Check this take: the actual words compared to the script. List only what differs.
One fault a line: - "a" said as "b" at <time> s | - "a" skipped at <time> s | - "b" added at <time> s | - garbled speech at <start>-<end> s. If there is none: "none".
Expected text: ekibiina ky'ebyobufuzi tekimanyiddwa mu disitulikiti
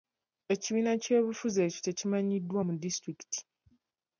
- "ekyo" added at 1.7 s